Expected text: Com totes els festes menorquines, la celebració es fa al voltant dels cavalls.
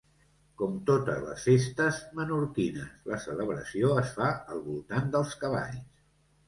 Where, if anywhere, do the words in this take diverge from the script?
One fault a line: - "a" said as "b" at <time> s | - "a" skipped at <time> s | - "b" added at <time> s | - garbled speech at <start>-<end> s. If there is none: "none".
- "els" said as "les" at 1.2 s